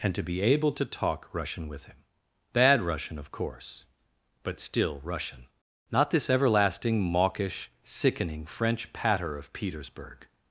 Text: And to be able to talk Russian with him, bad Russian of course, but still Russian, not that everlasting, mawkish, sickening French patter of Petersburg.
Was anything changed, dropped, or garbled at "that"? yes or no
yes